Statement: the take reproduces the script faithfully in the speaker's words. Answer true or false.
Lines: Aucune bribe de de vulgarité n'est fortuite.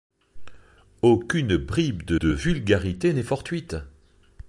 true